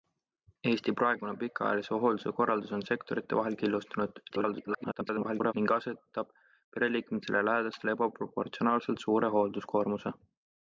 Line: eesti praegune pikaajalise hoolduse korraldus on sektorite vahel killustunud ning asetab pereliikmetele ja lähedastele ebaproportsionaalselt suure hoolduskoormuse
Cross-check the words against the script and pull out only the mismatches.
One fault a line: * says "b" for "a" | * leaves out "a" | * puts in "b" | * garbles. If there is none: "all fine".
* garbles